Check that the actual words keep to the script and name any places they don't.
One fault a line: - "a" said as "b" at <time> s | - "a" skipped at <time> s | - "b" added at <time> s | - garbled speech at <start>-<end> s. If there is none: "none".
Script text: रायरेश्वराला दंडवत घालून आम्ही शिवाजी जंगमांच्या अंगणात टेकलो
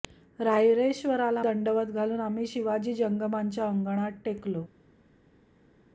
none